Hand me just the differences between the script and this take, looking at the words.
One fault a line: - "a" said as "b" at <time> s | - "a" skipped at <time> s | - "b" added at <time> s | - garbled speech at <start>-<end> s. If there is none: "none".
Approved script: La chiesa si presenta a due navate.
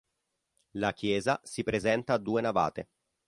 none